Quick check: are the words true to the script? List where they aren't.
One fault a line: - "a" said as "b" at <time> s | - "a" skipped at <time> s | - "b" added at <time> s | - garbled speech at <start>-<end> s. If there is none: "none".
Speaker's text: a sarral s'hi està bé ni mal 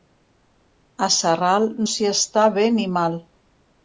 none